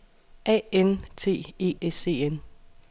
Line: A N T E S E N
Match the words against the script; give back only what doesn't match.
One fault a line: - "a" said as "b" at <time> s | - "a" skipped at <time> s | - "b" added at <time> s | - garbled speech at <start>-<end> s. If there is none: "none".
none